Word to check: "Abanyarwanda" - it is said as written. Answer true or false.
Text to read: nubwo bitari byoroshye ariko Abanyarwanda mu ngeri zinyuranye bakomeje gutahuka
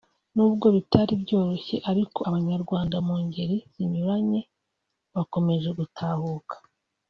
true